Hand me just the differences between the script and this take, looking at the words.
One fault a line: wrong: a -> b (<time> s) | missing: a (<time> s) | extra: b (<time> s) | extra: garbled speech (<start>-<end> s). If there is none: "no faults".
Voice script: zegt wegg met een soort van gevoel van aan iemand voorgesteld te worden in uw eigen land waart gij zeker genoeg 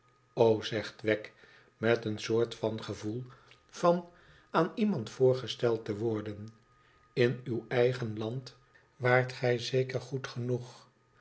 extra: goed (10.0 s)